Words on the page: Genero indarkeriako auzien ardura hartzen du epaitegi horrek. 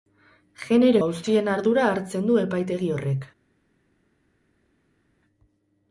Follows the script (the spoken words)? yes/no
no